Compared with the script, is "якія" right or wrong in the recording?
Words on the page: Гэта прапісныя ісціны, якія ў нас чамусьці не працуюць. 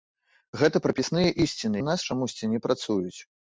wrong